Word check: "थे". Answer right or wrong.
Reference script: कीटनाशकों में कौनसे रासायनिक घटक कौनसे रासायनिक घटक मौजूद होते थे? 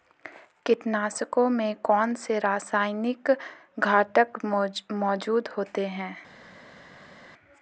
wrong